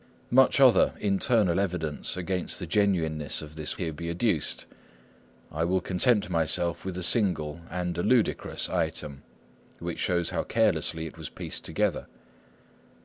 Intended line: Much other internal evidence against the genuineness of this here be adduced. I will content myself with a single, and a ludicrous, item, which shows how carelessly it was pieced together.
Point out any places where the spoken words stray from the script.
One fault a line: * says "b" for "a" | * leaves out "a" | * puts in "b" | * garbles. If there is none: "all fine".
all fine